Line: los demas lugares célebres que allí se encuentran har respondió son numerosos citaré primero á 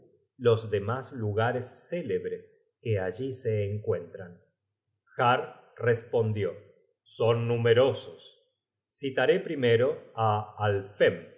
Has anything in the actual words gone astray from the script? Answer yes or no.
no